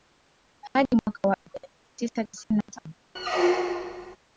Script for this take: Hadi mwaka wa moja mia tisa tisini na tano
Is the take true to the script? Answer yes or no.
yes